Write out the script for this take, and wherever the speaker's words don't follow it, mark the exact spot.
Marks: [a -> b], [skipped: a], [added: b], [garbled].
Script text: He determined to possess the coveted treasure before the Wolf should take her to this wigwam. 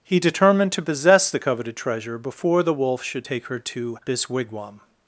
He determined to possess the coveted treasure before the Wolf should take her to this wigwam.